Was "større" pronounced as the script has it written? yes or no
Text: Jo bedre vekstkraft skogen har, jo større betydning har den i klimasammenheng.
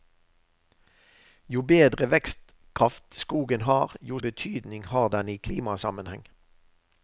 no